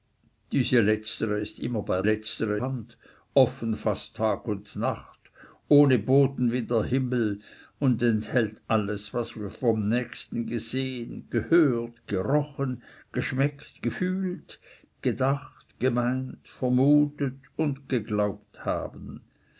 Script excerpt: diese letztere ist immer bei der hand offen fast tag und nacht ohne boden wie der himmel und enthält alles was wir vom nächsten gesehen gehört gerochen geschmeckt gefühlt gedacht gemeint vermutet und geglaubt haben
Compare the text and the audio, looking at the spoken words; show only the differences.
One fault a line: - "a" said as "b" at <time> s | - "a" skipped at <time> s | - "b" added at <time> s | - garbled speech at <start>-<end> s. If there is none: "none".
- "der" said as "letztere" at 2.0 s